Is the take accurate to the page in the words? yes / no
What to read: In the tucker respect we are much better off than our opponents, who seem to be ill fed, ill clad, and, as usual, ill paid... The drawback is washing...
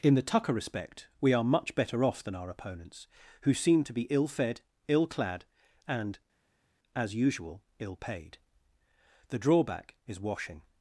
yes